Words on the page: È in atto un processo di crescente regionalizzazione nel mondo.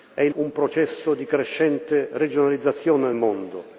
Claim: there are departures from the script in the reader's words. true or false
true